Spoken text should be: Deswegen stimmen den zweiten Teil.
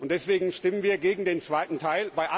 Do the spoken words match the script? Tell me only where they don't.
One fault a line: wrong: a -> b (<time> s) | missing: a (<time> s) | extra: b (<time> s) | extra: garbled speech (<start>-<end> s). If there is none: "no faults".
extra: wir gegen (0.8 s)